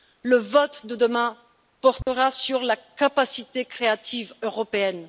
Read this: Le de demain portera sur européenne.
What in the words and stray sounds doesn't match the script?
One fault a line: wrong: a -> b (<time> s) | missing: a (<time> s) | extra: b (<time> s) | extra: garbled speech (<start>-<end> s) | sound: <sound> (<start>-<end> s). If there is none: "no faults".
extra: vote (0.4 s)
sound: dropout (2.0-2.1 s)
extra: la capacité créative (2.6 s)